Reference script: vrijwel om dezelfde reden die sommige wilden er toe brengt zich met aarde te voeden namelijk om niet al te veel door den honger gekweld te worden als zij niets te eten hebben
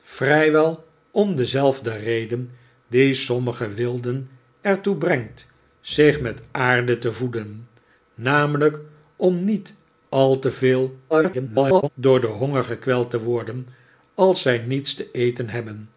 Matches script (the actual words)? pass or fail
fail